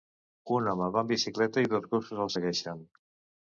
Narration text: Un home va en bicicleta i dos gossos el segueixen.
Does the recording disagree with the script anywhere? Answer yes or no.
no